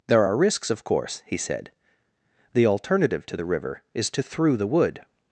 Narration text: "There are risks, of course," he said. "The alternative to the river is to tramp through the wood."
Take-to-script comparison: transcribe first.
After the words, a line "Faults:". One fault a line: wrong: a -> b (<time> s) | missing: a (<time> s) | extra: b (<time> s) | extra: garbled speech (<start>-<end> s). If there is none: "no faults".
"There are risks, of course," he said. "The alternative to the river is to through the wood."
Faults:
missing: tramp (4.2 s)